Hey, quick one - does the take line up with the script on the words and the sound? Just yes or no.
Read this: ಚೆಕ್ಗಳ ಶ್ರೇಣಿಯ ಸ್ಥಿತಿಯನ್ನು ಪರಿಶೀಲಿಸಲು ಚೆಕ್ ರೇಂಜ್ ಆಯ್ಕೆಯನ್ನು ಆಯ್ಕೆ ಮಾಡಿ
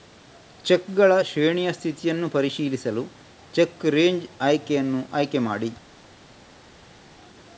yes